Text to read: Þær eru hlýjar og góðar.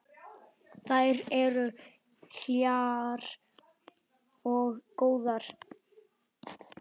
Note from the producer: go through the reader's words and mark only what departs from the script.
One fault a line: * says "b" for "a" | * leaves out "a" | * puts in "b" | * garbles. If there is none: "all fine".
all fine